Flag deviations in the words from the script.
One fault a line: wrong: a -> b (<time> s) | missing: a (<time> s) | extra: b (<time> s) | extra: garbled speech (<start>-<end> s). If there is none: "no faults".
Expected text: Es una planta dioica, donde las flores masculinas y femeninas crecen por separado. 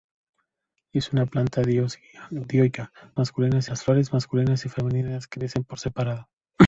wrong: donde -> masculinas (3.2 s)